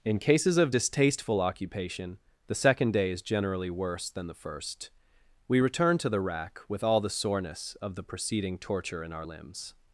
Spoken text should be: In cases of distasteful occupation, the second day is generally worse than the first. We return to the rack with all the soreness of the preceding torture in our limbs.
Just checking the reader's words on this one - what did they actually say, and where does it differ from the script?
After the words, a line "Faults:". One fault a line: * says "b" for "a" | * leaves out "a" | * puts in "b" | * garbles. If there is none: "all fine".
In cases of distasteful occupation, the second day is generally worse than the first. We return to the rack with all the soreness of the preceding torture in our limbs.
Faults:
all fine